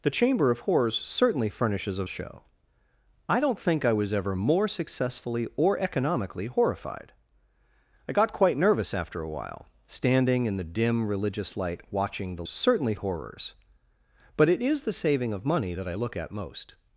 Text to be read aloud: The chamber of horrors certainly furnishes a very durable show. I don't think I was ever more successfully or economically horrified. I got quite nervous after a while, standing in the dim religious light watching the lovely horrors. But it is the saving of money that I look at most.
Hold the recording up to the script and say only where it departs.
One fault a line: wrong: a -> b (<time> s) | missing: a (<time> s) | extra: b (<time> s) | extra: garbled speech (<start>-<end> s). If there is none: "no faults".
missing: very durable (2.0 s)
wrong: lovely -> certainly (12.4 s)